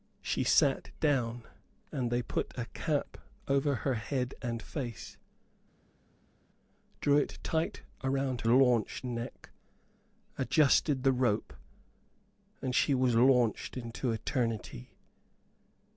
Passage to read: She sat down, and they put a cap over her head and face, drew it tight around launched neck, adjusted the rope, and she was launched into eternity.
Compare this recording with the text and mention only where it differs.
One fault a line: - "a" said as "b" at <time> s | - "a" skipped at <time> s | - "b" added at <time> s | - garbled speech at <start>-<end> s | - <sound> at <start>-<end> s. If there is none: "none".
none